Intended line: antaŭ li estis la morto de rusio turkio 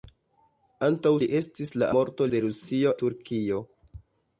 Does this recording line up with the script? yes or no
yes